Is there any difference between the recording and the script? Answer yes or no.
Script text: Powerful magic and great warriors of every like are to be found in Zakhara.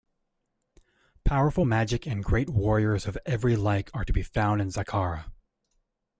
no